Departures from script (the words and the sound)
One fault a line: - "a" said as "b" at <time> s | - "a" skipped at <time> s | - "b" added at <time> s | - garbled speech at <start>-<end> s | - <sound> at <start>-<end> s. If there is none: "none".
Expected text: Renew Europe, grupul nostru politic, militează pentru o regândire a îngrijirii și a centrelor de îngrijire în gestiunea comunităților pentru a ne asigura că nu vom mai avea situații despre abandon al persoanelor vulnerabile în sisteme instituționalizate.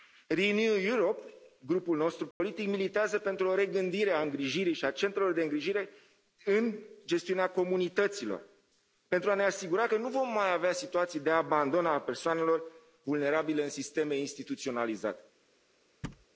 - dropout at 2.3-2.4 s
- "despre" said as "de" at 11.2 s
- thud at 16.0-16.3 s